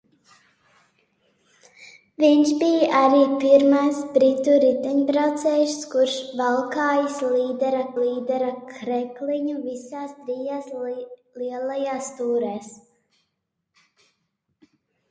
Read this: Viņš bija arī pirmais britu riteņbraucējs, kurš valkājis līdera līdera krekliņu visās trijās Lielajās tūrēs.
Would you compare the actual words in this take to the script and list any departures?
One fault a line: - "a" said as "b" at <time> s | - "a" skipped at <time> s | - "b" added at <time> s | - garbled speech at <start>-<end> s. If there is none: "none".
none